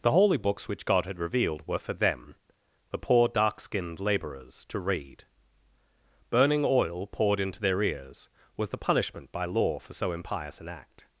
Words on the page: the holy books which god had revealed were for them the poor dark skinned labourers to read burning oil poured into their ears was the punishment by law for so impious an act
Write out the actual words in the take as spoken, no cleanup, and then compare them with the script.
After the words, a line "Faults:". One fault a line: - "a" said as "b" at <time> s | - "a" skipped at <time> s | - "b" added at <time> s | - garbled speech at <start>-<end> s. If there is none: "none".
the holy books which god had revealed were for them the poor dark skinned labourers to read burning oil poured into their ears was the punishment by law for so impious an act
Faults:
none